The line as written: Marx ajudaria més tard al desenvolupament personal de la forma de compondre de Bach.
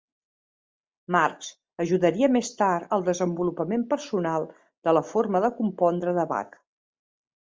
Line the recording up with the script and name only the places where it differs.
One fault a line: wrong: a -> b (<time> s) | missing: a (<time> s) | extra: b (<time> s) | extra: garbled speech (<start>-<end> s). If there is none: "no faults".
no faults